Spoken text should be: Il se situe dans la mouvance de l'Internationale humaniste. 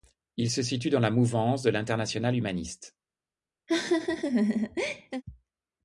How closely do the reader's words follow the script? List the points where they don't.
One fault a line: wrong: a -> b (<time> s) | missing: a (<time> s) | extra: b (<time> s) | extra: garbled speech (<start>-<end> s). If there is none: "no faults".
no faults